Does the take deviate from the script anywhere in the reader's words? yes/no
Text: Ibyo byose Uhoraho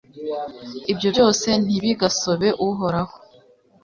yes